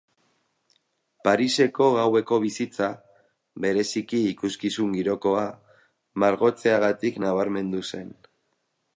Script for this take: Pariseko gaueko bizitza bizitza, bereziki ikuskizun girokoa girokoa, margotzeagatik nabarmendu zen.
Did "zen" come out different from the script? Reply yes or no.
no